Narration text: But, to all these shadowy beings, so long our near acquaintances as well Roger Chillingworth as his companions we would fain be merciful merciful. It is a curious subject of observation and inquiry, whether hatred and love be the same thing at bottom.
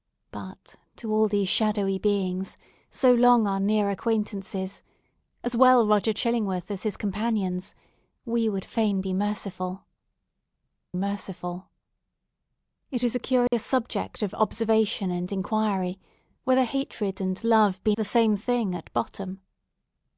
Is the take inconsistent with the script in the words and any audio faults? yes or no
yes